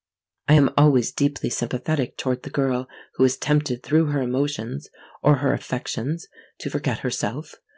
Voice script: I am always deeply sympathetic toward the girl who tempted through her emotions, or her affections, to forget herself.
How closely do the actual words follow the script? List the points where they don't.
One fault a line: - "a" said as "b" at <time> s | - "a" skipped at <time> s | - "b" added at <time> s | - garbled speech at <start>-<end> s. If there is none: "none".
- "is" added at 3.3 s